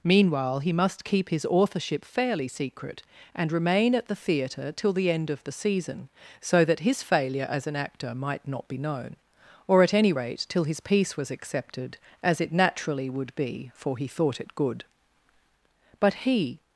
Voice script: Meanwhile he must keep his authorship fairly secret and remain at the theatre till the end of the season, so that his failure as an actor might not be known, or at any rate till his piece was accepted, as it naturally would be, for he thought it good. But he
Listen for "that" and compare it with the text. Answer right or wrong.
right